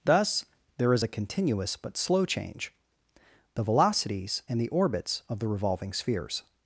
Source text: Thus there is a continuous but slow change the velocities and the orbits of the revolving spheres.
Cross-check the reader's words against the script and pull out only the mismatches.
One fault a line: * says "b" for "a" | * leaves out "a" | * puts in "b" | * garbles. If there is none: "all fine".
all fine